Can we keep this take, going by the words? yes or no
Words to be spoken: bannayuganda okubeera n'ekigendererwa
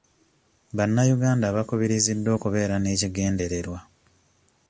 no